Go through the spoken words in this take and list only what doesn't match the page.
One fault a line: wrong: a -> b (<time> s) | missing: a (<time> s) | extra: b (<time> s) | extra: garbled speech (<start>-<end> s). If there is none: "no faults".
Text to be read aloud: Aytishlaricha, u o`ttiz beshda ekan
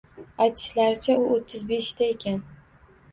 no faults